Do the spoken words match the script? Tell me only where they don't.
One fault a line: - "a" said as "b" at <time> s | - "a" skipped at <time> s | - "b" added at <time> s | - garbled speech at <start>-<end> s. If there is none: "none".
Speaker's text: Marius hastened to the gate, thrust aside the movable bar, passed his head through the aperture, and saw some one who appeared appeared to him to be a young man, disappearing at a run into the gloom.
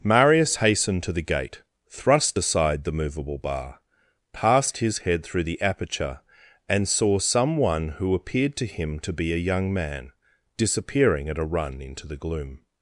- "appeared" skipped at 8.6 s